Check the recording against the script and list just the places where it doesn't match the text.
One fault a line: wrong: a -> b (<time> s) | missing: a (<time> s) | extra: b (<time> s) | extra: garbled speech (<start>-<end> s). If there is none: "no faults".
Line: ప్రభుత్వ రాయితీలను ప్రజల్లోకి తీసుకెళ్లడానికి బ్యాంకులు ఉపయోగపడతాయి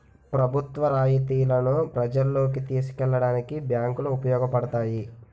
no faults